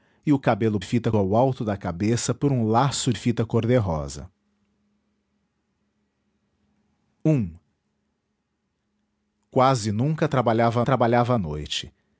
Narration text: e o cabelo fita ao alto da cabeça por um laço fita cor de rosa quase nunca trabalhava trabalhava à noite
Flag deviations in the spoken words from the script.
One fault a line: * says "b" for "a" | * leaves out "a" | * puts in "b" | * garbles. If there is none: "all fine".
all fine